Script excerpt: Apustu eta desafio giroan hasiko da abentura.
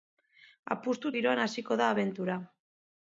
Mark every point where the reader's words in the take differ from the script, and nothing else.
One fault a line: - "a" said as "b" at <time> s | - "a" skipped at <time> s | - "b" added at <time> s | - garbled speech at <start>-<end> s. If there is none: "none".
- "eta desafio" skipped at 1.1 s